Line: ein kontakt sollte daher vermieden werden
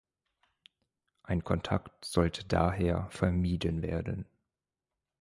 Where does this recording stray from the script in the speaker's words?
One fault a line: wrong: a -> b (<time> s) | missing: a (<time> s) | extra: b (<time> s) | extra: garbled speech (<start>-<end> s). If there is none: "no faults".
no faults